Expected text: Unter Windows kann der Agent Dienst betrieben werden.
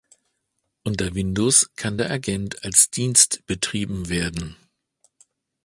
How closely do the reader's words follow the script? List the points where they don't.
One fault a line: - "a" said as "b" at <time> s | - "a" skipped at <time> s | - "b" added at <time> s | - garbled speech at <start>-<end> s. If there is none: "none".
- "als" added at 2.6 s